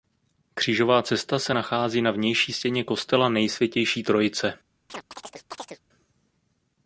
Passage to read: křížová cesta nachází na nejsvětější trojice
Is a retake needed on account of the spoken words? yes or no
yes